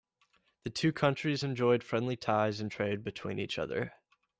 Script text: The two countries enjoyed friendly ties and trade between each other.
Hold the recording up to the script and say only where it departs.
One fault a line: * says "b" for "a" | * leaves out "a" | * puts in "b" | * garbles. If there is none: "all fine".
all fine